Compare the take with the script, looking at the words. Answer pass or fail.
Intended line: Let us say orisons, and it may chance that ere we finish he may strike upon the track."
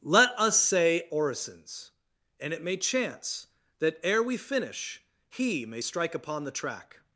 pass